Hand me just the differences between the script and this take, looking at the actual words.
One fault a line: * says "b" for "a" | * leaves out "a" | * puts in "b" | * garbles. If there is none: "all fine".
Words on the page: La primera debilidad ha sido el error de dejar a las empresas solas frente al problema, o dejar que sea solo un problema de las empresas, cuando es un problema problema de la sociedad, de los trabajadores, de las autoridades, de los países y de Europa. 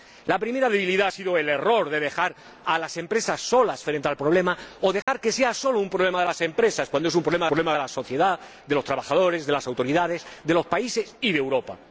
all fine